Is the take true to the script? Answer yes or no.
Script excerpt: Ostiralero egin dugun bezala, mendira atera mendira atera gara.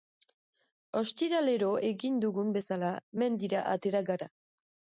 no